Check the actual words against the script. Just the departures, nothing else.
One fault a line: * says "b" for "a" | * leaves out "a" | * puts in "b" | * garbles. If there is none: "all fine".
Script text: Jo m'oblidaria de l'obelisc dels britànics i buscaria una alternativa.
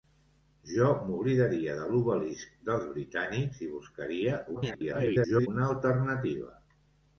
* garbles